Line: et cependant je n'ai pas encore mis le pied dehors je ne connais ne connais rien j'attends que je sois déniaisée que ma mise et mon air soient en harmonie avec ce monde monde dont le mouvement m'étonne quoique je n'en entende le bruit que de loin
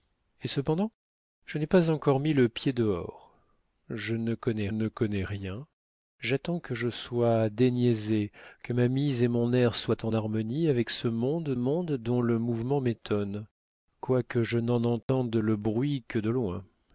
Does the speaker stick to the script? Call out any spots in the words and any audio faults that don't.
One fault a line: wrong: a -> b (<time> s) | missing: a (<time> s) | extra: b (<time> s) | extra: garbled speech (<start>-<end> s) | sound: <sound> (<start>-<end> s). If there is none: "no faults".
sound: dropout (15.0-15.1 s)